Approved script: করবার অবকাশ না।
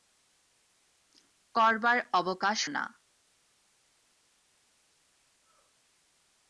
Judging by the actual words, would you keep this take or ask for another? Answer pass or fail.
pass